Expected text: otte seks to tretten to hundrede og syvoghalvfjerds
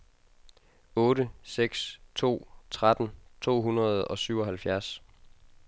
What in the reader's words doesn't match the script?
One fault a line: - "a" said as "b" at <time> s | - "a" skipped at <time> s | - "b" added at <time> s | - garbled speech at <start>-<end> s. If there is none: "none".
none